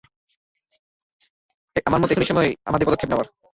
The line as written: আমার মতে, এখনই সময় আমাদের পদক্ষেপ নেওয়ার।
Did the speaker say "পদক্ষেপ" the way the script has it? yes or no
yes